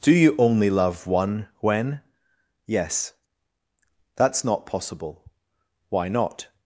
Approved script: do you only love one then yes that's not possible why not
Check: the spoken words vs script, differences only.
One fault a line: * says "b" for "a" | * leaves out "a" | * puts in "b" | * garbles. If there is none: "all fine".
* says "when" for "then"